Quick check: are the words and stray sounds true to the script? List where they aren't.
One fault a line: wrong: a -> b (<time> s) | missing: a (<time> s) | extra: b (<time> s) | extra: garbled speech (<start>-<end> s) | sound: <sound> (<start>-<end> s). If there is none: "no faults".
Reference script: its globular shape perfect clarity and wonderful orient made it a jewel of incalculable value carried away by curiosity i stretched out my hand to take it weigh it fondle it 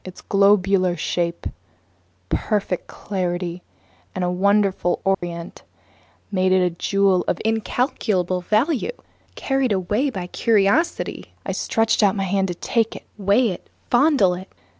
sound: dropout (5.1-5.2 s)